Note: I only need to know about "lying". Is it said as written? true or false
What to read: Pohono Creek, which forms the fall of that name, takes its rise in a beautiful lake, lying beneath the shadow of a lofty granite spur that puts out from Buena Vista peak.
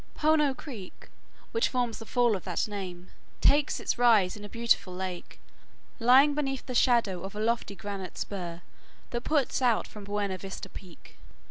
true